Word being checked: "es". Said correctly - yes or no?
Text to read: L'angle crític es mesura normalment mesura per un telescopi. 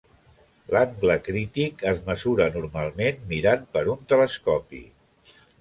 yes